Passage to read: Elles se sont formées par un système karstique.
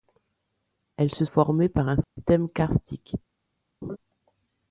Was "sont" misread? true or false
true